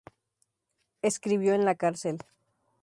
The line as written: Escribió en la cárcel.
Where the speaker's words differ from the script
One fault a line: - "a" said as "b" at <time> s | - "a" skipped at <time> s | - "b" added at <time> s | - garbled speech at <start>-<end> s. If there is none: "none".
none